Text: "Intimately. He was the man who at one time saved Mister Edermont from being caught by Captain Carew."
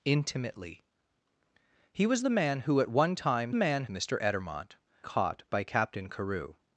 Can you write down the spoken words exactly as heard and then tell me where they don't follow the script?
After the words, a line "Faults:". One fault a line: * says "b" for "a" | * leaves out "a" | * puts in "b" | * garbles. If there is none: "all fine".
"Intimately. He was the man who at one time man Mister Edermont caught by Captain Carew."
Faults:
* says "man" for "saved"
* leaves out "from being"